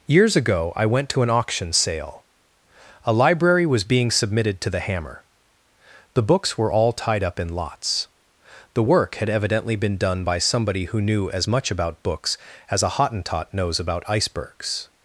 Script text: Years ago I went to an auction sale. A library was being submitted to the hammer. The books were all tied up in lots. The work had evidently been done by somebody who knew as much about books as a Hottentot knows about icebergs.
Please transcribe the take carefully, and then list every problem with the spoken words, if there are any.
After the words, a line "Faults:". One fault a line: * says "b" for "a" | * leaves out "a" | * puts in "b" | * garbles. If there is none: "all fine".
Years ago I went to an auction sale. A library was being submitted to the hammer. The books were all tied up in lots. The work had evidently been done by somebody who knew as much about books as a Hottentot knows about icebergs.
Faults:
all fine